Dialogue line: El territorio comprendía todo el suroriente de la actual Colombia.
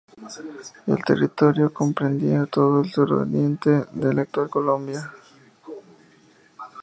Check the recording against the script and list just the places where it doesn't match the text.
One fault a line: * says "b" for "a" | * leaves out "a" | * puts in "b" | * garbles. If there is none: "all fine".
all fine